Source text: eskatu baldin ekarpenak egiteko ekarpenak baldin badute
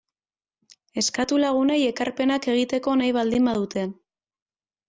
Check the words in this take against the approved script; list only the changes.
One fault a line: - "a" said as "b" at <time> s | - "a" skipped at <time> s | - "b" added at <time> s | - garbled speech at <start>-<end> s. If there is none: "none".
- "baldin" said as "lagunei" at 1.4 s
- "ekarpenak" said as "nahi" at 3.0 s